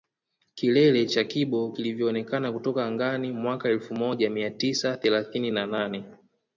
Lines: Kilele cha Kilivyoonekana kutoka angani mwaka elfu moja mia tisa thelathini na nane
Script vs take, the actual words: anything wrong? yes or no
yes